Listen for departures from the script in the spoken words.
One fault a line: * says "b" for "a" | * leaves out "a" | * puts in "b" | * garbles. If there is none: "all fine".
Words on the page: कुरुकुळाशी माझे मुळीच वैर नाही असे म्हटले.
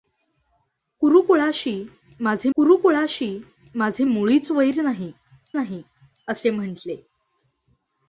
* puts in "कुरुकुळाशी माझे"
* puts in "नाही"